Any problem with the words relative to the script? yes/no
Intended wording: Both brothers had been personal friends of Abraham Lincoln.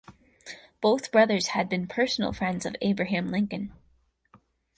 no